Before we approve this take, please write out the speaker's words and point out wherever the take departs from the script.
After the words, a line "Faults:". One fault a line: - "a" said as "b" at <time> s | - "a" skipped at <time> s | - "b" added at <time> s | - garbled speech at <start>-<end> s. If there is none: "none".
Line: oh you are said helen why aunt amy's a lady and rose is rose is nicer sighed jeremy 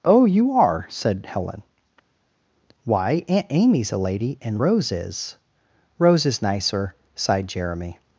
oh you are said helen why aunt amy's a lady and rose is rose is nicer sighed jeremy
Faults:
none